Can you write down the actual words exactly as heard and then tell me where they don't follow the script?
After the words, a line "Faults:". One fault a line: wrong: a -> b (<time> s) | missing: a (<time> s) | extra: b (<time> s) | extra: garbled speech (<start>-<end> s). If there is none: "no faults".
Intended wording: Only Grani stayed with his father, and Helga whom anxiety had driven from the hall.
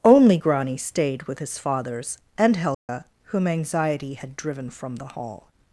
Only Grani stayed with his fathers, and Helga whom anxiety had driven from the hall.
Faults:
wrong: father -> fathers (1.6 s)